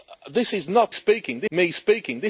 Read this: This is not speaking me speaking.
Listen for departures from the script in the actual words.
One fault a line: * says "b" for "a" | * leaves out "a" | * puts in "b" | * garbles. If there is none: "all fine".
all fine